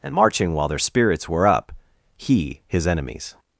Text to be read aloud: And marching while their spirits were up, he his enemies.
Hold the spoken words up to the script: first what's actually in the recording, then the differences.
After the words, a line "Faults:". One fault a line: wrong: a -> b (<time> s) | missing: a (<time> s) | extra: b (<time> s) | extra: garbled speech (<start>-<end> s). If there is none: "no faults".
And marching while their spirits were up, he his enemies.
Faults:
no faults